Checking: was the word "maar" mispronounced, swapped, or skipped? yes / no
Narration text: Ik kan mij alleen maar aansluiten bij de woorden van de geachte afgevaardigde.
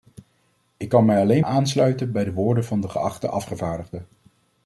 yes